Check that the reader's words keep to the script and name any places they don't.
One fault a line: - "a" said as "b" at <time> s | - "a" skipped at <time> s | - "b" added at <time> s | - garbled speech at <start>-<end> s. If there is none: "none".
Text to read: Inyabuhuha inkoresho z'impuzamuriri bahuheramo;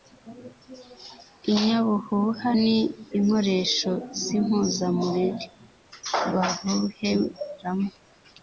- "ni" added at 2.6 s